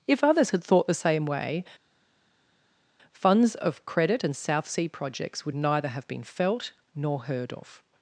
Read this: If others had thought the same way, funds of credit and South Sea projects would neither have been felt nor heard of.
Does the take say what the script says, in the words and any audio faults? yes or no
yes